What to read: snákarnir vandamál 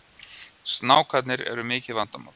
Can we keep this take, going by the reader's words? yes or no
no